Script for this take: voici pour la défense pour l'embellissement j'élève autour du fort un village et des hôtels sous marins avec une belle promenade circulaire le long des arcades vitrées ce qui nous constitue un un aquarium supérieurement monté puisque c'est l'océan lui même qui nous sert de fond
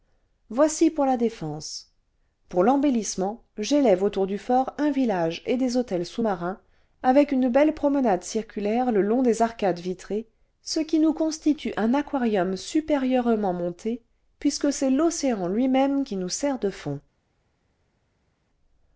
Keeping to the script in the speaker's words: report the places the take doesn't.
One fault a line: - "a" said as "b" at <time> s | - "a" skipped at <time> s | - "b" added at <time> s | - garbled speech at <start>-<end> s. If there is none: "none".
- "un" skipped at 11.9 s